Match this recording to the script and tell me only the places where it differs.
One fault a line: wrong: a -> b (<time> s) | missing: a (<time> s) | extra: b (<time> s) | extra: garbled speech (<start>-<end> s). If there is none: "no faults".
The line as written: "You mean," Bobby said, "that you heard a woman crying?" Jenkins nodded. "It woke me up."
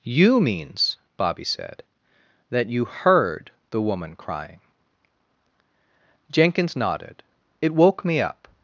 wrong: mean -> means (0.4 s)
wrong: a -> the (3.7 s)